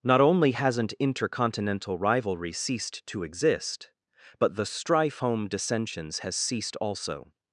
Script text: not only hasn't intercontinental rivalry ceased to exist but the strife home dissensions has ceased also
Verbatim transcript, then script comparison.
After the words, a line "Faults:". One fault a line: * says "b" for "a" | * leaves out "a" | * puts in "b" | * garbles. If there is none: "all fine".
not only hasn't intercontinental rivalry ceased to exist but the strife home dissensions has ceased also
Faults:
all fine